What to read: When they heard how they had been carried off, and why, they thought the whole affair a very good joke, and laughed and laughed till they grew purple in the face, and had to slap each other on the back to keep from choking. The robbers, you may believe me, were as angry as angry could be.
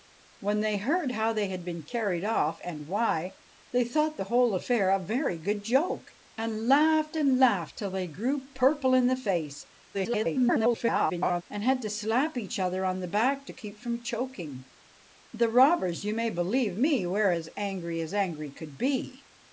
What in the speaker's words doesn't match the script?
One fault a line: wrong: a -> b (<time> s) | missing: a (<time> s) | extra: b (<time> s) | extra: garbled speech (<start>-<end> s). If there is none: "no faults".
extra: garbled speech (9.9-11.4 s)